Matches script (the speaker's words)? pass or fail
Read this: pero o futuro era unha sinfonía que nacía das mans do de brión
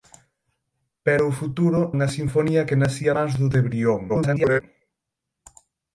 fail